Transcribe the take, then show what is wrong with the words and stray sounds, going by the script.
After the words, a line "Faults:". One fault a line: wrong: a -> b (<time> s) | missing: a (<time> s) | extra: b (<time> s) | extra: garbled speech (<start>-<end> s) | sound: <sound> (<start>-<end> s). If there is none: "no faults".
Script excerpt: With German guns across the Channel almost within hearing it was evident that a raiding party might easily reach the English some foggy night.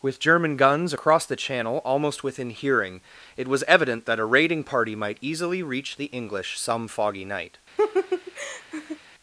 With German guns across the Channel almost within hearing it was evident that a raiding party might easily reach the English some foggy night.
Faults:
sound: laugh (7.8-9.0 s)